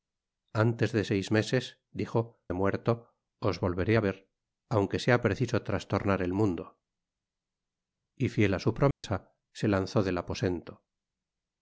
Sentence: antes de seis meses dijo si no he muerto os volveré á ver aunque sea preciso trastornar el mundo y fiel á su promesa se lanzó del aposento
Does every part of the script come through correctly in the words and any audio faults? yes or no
no